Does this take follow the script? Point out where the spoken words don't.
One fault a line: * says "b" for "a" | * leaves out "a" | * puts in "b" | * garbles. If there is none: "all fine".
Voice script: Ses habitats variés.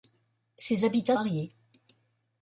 all fine